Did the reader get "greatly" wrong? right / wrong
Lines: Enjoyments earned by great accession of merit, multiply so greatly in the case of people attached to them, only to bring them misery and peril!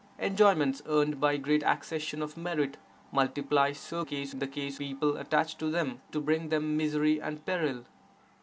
wrong